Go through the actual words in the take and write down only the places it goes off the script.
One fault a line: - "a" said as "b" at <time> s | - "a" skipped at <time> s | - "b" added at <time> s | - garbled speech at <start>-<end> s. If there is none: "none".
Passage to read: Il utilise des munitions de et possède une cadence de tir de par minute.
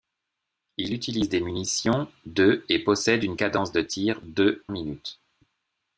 - "par" skipped at 4.6 s